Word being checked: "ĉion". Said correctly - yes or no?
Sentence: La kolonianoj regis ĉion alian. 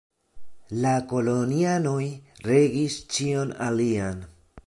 yes